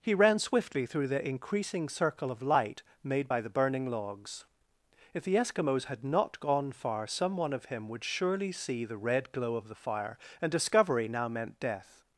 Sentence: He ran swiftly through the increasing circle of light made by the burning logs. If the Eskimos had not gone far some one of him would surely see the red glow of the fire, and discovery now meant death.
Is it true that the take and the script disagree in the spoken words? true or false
false